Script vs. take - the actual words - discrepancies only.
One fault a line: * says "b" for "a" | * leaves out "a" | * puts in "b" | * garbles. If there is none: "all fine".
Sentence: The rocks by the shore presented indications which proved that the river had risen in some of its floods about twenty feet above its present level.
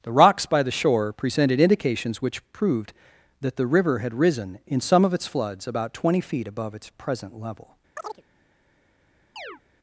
all fine